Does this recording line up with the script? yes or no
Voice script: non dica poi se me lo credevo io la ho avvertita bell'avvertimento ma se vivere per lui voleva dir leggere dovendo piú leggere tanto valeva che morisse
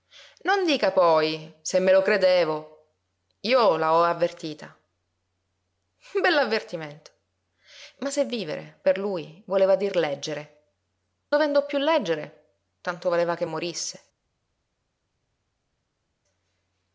yes